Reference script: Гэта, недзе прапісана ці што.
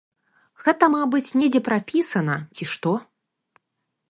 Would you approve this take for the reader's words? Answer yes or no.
no